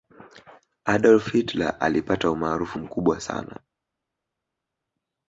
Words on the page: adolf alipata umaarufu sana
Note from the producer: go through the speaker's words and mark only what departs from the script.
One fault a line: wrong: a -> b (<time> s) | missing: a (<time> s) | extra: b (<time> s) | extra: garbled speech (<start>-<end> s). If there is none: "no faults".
extra: hitler (1.3 s)
extra: mkubwa (2.8 s)